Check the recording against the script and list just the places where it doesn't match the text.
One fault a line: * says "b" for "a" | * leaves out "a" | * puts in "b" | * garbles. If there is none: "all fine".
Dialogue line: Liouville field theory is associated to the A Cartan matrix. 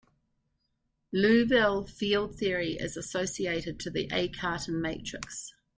all fine